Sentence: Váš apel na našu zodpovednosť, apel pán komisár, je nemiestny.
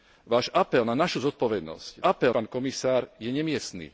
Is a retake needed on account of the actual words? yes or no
no